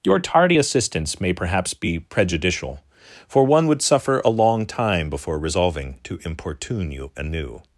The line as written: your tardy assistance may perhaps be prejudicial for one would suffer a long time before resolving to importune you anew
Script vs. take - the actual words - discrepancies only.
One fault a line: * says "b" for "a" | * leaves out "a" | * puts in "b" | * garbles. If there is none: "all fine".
all fine